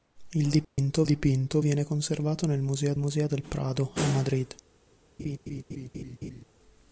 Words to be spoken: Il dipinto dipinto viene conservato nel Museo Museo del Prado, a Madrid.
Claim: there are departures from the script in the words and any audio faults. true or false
true